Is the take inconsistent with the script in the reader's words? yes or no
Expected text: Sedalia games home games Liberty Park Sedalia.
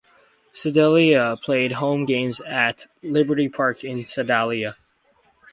yes